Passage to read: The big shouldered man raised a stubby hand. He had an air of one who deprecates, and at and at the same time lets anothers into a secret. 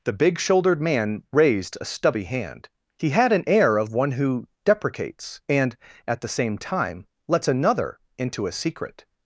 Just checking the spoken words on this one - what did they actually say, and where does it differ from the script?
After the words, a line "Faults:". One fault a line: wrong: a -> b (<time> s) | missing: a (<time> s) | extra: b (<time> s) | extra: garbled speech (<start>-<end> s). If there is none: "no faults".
The big shouldered man raised a stubby hand. He had an air of one who deprecates, and at the same time lets another into a secret.
Faults:
missing: and at (6.2 s)
wrong: anothers -> another (7.5 s)